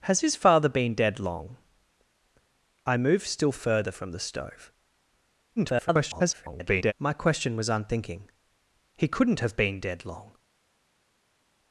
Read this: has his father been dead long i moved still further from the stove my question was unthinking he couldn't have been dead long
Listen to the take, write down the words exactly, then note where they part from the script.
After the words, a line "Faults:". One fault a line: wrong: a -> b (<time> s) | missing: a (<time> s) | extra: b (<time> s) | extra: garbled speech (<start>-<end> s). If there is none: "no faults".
has his father been dead long i moved still further from the stove [garbled] my question was unthinking he couldn't have been dead long
Faults:
extra: garbled speech (5.6-6.9 s)